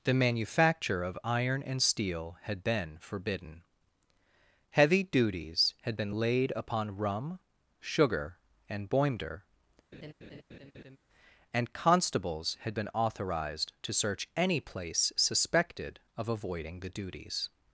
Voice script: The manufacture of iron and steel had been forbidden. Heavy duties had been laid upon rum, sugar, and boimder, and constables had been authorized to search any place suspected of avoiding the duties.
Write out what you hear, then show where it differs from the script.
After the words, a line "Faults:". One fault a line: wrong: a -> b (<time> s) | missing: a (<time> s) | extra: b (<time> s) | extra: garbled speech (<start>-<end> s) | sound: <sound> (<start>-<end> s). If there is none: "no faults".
The manufacture of iron and steel had been forbidden. Heavy duties had been laid upon rum, sugar, and boimder, and constables had been authorized to search any place suspected of avoiding the duties.
Faults:
sound: laugh (9.9-11.0 s)